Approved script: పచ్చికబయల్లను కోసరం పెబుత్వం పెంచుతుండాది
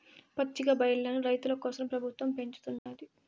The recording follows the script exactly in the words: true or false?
false